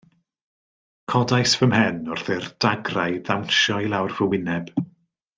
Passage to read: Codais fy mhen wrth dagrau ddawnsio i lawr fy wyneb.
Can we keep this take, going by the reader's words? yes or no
no